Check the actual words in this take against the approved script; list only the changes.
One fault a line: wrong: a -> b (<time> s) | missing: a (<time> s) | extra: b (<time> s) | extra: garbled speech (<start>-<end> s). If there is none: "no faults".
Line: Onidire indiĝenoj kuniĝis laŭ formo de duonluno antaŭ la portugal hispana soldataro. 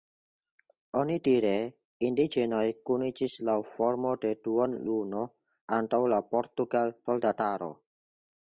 missing: hispana (7.0 s)